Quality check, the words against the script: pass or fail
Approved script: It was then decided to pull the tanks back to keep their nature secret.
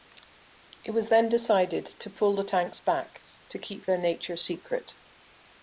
pass